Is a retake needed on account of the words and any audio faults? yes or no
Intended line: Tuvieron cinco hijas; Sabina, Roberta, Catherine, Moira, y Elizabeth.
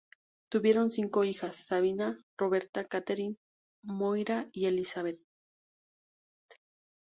no